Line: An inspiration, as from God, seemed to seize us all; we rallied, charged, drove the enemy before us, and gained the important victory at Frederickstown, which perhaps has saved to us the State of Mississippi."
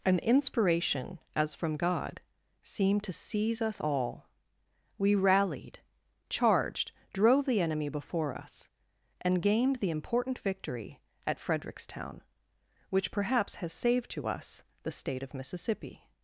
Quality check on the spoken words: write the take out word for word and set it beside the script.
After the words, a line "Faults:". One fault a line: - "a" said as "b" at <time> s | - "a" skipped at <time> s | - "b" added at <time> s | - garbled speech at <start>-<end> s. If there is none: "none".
An inspiration, as from God, seemed to seize us all; we rallied, charged, drove the enemy before us, and gained the important victory at Frederickstown, which perhaps has saved to us the State of Mississippi."
Faults:
none